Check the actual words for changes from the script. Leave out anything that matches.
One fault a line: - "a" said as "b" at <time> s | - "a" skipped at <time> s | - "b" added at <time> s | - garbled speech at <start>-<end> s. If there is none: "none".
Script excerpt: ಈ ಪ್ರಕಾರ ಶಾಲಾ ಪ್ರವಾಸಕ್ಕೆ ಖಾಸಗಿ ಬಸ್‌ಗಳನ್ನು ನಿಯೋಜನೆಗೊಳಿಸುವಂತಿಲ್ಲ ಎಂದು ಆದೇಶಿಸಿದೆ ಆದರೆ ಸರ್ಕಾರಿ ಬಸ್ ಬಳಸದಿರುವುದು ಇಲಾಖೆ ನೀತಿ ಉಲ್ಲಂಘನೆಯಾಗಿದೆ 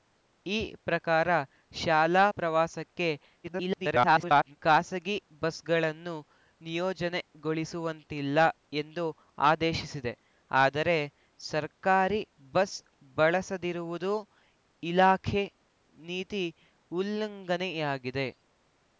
- garbled speech at 3.4-4.6 s